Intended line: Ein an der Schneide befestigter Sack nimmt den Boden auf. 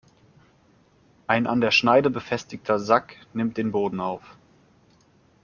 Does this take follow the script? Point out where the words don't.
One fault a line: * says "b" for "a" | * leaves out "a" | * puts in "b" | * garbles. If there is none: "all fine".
all fine